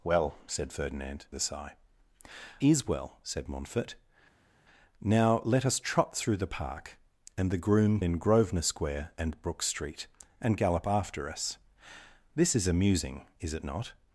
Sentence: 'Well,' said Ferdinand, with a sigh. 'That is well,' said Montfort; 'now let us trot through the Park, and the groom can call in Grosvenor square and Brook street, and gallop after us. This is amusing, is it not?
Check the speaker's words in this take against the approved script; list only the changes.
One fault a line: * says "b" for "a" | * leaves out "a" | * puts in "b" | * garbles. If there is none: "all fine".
* leaves out "with"
* leaves out "That"
* leaves out "can call"